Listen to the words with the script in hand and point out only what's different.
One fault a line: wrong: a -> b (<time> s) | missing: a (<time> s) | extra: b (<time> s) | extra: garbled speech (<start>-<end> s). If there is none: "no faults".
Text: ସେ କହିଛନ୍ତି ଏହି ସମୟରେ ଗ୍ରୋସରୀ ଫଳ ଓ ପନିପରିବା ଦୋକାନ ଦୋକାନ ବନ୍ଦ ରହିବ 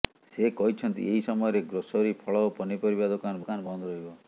no faults